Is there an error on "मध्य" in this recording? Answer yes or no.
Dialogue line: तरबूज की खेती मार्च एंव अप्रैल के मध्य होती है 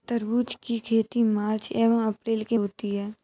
yes